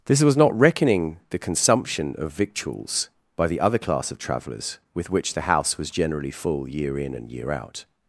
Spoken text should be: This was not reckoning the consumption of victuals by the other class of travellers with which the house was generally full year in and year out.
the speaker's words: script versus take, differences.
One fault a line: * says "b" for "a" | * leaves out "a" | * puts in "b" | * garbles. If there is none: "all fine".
all fine